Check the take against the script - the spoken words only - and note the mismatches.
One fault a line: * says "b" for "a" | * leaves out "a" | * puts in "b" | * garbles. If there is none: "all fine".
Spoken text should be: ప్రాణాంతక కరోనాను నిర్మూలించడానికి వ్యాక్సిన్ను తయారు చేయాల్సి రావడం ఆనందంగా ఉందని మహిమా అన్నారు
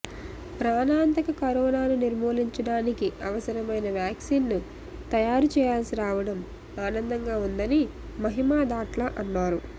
* puts in "అవసరమైన"
* puts in "దాట్ల"